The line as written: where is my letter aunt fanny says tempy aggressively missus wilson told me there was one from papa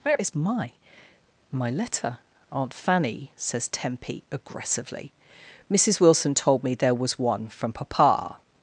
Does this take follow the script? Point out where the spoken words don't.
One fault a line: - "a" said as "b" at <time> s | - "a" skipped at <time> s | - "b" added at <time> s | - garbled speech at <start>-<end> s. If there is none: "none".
- "my" added at 1.5 s